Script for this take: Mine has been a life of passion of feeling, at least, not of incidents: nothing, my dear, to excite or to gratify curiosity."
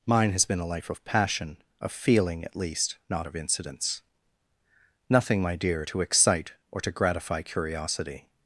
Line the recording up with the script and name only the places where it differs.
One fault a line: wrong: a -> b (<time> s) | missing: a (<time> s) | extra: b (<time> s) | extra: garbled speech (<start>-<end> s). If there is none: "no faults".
no faults